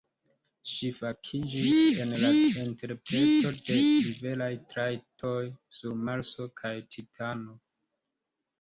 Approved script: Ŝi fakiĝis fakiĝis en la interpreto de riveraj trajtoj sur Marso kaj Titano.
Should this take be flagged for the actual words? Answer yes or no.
yes